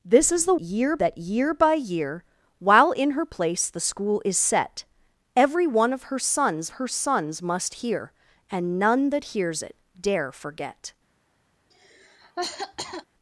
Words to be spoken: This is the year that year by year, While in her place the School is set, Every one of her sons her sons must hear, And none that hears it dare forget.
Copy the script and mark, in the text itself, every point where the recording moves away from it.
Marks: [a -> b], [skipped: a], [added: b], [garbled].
This is the year that year by year, While in her place the School is set, Every one of her sons her sons must hear, And none that hears it dare forget.